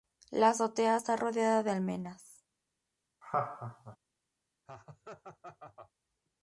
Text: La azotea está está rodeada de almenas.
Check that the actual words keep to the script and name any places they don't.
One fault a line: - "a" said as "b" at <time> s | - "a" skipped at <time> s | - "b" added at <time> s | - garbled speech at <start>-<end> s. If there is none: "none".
- "está" skipped at 1.2 s